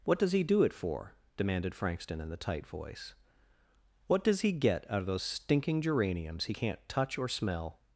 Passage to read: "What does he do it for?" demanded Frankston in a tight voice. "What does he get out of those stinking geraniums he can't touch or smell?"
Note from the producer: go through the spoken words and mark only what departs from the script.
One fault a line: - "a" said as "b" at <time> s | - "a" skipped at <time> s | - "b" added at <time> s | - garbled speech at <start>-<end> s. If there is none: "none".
- "a" said as "the" at 2.3 s